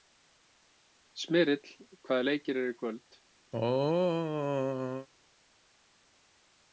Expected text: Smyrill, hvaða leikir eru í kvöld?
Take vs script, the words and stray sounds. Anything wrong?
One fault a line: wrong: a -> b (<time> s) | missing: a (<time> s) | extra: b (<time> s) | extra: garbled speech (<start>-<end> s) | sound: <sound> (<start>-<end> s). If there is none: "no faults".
sound: throat clearing (3.5-5.1 s)